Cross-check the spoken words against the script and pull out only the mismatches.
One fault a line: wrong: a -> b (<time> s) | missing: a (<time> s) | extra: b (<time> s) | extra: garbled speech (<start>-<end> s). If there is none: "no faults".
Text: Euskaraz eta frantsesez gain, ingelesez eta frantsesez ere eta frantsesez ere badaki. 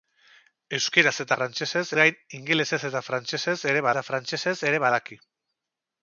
no faults